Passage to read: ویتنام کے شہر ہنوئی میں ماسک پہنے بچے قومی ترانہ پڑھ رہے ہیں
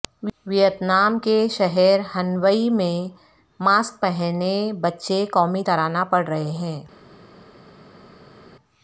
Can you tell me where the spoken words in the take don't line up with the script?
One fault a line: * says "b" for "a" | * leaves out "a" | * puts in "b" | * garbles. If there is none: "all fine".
all fine